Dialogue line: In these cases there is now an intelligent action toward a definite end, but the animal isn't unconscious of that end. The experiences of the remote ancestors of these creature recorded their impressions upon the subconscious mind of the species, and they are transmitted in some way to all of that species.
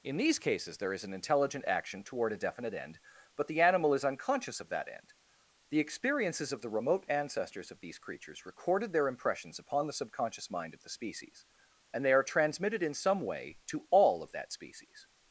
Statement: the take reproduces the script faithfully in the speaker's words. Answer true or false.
false